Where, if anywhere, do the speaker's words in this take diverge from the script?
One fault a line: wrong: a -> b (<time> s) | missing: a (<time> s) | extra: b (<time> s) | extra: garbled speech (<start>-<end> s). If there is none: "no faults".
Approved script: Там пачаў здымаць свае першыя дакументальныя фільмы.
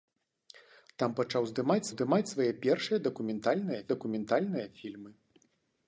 extra: здымаць (1.9 s)
extra: дакументальныя (3.9 s)